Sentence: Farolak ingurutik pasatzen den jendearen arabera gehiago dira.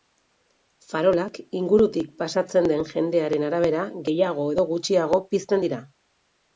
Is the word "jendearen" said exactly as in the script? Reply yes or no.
yes